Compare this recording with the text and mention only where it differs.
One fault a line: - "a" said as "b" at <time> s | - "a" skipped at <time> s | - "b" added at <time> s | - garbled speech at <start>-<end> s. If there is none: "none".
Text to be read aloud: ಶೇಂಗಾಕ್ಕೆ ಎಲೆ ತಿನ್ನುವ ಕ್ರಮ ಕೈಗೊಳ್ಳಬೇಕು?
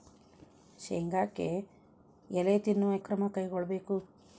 none